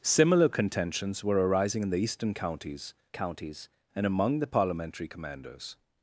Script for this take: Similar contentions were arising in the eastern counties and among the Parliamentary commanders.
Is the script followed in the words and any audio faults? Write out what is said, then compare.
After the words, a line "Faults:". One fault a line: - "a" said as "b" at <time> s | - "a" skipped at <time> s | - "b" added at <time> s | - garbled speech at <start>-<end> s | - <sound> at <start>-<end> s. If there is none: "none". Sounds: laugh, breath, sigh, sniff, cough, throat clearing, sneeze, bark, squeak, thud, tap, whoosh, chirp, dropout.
Similar contentions were arising in the eastern counties counties and among the Parliamentary commanders.
Faults:
- "counties" added at 3.1 s